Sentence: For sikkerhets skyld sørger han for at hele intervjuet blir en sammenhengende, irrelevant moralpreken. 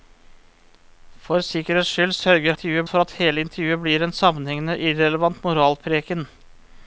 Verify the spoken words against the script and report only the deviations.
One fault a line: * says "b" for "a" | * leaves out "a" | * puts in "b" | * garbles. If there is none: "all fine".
* says "intervjuet" for "han"